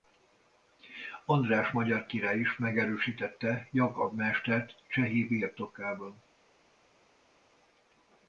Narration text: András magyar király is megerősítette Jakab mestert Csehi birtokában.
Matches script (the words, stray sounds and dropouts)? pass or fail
pass